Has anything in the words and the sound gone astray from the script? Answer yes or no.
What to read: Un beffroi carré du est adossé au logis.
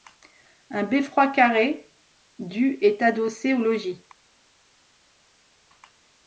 no